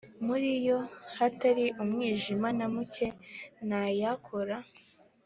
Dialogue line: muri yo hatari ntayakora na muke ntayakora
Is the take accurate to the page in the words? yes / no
no